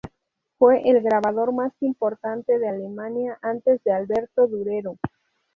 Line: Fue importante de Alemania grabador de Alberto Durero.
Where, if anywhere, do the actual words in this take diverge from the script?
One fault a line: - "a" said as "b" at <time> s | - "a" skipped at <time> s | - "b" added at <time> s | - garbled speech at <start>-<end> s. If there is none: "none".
- "el grabador más" added at 0.9 s
- "grabador" said as "antes" at 3.4 s